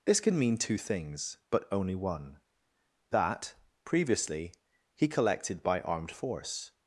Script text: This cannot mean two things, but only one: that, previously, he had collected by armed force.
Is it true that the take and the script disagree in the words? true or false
true